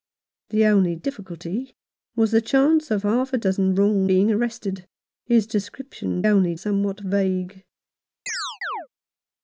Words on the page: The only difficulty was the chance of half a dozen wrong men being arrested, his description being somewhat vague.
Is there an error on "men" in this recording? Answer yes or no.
yes